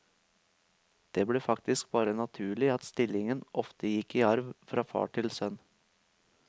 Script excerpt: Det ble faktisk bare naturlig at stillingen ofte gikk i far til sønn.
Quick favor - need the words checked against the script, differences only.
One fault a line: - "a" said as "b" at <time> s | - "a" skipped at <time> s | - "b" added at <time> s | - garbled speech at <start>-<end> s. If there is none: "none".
- "arv fra" added at 4.3 s